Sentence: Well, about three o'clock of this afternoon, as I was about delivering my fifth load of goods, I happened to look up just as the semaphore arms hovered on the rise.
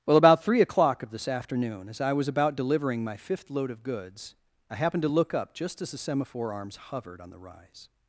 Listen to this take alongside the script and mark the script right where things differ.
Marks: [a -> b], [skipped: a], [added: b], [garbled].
Well, about three o'clock of this afternoon, as I was about delivering my fifth load of goods, I happened to look up just as the semaphore arms hovered on the rise.